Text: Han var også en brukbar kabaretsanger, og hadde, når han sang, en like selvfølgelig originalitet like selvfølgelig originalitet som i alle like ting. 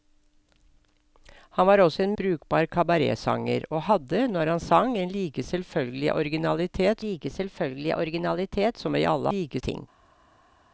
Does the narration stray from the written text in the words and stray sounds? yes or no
no